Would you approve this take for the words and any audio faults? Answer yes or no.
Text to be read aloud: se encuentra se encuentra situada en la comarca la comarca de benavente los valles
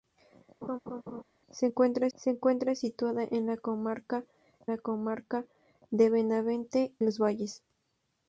no